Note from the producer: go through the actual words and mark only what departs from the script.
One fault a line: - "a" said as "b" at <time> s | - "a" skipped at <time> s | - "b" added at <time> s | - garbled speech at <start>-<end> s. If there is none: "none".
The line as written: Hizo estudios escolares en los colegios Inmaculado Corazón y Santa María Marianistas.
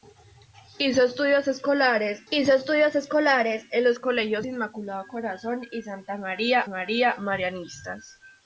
- "hizo estudios escolares" added at 2.3 s
- "María" added at 6.7 s